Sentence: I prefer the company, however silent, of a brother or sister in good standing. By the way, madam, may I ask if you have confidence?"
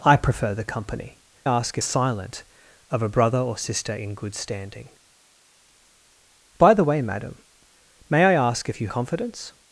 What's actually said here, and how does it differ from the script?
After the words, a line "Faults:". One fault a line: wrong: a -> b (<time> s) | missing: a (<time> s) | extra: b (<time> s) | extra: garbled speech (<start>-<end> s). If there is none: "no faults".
I prefer the company, ask silent, of a brother or sister in good standing. By the way, madam, may I ask if you confidence?"
Faults:
wrong: however -> ask (1.4 s)
missing: have (8.9 s)